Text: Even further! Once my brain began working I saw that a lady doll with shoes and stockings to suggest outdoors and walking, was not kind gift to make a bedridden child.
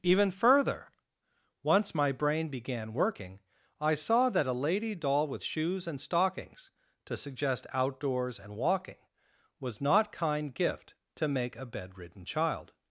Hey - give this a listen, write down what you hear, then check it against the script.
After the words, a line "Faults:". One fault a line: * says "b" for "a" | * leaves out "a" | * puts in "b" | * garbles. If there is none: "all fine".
Even further! Once my brain began working I saw that a lady doll with shoes and stockings to suggest outdoors and walking, was not kind gift to make a bedridden child.
Faults:
all fine